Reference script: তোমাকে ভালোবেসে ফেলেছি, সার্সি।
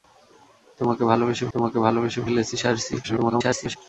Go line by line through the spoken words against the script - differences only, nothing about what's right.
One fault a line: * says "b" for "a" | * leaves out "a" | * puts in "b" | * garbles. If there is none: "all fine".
* puts in "তোমাকে ভালোবেসে"
* garbles